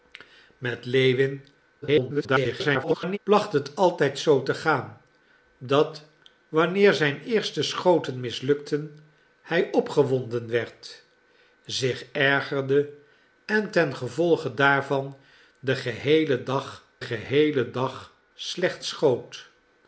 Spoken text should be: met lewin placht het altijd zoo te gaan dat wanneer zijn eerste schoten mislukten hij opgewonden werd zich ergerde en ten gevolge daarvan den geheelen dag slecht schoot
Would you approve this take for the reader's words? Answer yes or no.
no